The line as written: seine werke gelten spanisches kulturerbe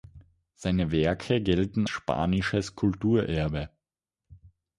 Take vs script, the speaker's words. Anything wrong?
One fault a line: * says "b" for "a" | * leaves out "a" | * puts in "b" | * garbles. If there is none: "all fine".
all fine